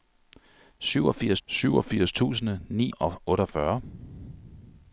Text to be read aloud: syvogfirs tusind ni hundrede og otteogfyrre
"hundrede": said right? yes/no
no